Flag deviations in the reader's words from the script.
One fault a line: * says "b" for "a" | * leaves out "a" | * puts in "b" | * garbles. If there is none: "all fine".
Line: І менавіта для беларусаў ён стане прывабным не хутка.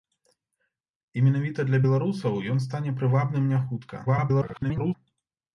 * garbles